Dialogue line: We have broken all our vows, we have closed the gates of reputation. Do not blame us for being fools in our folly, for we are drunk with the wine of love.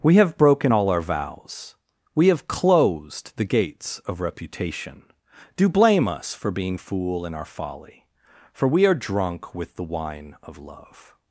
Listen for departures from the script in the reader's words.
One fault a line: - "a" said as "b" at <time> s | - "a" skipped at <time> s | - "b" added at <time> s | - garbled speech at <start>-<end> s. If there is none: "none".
- "not" skipped at 5.7 s
- "fools" said as "fool" at 6.7 s